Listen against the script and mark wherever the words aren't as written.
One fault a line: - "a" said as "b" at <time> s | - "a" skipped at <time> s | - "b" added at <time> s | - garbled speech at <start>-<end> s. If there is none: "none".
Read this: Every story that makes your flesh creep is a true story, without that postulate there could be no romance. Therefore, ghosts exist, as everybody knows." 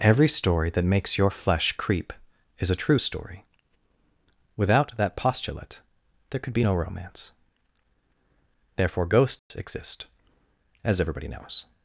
none